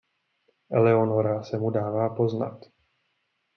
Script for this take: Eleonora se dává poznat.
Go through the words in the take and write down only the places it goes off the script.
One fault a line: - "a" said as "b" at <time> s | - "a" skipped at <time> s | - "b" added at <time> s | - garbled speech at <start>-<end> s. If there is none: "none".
- "mu" added at 1.6 s